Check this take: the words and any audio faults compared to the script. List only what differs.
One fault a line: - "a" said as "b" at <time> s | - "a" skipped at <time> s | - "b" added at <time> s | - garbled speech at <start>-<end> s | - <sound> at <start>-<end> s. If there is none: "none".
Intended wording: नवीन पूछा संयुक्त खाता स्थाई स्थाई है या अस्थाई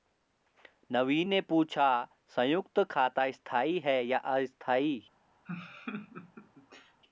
- "ने" added at 1.3 s
- "स्थाई" skipped at 3.8 s
- laugh at 5.5-7.0 s